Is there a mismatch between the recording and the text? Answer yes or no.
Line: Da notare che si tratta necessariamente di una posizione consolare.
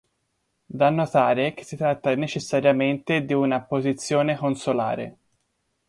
no